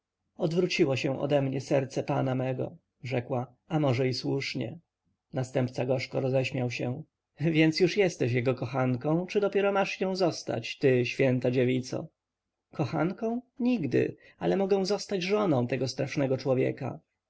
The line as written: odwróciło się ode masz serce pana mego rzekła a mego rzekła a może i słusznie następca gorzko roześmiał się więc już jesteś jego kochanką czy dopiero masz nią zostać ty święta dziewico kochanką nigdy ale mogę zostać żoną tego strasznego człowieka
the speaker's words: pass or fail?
fail